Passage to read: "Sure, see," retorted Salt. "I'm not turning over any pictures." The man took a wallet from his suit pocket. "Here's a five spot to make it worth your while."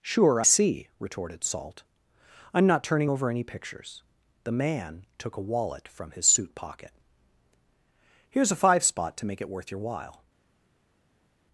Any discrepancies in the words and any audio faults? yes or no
no